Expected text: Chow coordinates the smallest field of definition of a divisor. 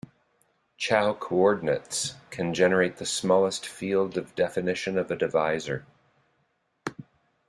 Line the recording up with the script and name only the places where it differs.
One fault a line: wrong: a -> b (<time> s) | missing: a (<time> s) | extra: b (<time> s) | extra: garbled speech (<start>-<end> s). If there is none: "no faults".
extra: can generate (2.3 s)